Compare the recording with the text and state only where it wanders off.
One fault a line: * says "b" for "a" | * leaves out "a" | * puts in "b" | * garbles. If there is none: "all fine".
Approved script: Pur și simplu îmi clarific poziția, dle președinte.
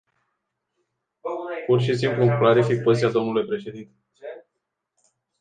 all fine